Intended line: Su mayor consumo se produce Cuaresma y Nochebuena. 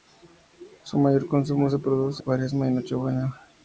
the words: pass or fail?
pass